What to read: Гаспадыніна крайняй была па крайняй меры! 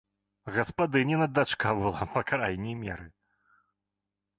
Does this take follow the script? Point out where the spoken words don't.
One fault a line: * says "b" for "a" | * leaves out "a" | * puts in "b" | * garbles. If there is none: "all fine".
* says "дачка" for "крайняй"